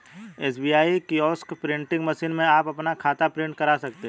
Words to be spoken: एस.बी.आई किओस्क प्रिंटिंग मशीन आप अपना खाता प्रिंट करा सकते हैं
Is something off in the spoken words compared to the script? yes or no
yes